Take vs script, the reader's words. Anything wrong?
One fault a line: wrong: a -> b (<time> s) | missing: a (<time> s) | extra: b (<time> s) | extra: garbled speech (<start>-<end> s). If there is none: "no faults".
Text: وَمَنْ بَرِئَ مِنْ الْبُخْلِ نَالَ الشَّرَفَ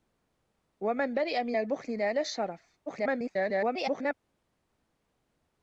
extra: garbled speech (2.9-4.1 s)